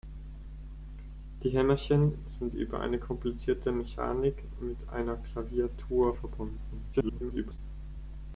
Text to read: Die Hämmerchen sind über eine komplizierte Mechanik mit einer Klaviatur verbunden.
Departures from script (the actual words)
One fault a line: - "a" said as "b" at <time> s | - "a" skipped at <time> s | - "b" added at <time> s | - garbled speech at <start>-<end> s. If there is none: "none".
- garbled speech at 6.9-7.6 s